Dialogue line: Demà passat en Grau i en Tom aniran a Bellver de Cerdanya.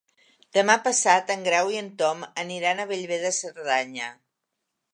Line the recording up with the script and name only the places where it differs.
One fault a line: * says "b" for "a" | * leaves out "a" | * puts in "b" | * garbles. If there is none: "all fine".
all fine